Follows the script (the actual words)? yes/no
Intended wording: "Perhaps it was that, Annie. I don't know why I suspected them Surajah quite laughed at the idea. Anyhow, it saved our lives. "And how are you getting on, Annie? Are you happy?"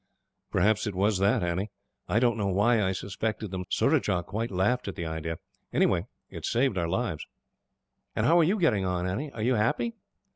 yes